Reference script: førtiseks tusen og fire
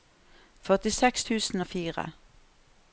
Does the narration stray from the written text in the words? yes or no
no